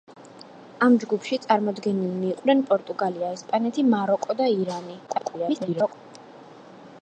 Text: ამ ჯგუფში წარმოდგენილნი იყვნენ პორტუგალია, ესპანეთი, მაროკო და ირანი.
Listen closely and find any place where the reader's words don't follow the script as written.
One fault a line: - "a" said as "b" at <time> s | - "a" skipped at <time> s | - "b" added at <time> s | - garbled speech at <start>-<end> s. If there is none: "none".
- garbled speech at 5.1-5.9 s